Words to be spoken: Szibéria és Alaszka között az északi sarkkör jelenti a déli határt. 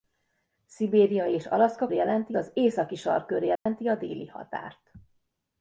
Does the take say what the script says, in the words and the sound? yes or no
no